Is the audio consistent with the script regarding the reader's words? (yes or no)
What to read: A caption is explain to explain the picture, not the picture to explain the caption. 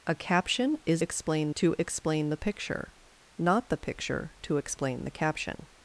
yes